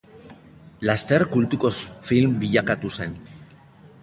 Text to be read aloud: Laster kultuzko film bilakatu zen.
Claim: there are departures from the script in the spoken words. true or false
false